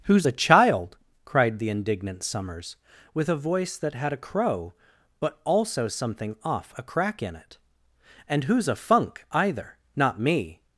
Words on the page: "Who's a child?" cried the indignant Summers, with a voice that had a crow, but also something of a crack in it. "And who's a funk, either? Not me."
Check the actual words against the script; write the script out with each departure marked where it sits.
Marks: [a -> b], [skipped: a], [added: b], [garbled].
"Who's a child?" cried the indignant Summers, with a voice that had a crow, but also something [of -> off] a crack in it. "And who's a funk, either? Not me."